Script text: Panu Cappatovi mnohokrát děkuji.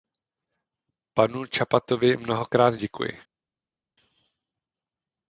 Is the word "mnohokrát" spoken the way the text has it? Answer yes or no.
yes